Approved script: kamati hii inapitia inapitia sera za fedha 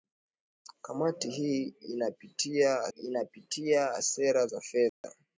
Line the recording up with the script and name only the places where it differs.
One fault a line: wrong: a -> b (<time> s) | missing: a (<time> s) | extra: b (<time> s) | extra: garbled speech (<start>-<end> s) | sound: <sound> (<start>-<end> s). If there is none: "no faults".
sound: dropout (4.9-5.0 s)